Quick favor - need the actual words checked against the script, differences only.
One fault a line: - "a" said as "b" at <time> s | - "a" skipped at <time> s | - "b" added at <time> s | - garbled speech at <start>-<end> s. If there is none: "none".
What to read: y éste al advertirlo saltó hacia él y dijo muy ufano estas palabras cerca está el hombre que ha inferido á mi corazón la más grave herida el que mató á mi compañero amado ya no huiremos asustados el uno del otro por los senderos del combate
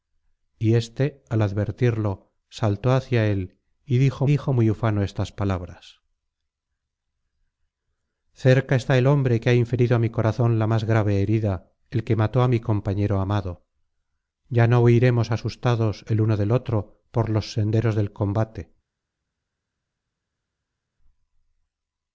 - "dijo" added at 4.3 s